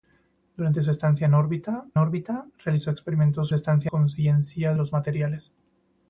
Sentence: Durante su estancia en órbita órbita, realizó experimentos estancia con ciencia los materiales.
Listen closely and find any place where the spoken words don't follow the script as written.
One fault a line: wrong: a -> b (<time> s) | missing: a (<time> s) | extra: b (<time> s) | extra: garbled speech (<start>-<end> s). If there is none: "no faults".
no faults